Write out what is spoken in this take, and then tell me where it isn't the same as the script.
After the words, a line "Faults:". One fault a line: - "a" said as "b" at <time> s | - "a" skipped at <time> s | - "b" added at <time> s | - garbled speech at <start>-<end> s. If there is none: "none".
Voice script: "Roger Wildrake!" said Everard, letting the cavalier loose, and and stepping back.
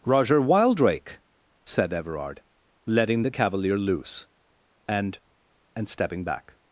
"Roger Wildrake!" said Everard, letting the cavalier loose, and and stepping back.
Faults:
none